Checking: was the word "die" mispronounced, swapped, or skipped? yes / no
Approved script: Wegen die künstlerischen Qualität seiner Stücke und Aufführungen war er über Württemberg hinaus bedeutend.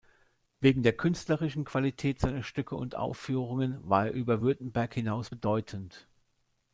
yes